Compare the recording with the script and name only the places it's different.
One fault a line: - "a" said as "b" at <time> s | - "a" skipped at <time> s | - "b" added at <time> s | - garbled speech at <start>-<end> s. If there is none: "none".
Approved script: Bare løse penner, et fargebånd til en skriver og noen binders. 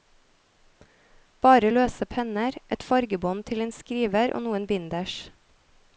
none